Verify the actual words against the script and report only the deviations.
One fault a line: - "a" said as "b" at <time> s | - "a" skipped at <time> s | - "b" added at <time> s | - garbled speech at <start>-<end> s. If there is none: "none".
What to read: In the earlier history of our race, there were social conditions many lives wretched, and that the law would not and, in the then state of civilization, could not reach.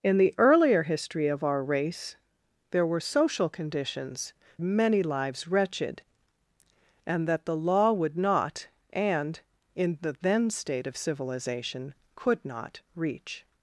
none